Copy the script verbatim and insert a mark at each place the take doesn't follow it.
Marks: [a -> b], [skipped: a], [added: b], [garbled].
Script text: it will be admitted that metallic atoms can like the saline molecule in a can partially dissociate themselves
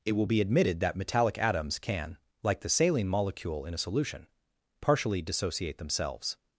it will be admitted that metallic atoms can like the saline molecule in a [can -> solution] partially dissociate themselves